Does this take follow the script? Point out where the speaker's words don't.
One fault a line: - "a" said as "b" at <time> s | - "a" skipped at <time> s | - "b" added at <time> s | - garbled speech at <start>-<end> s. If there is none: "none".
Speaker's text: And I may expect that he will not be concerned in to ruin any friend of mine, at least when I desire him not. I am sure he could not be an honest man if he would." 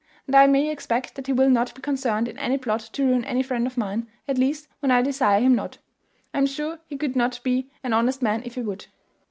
- "any plot" added at 2.4 s